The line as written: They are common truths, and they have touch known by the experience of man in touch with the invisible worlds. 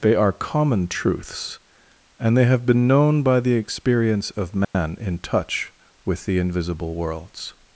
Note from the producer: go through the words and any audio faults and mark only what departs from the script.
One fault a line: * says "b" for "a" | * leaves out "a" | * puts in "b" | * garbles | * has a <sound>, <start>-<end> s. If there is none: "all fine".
* says "been" for "touch"
* has a dropout, 4.6-4.7 s